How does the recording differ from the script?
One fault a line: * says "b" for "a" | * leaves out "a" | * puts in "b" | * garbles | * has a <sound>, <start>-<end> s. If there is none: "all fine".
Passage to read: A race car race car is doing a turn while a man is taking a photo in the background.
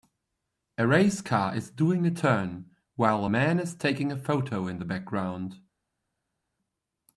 * leaves out "race car"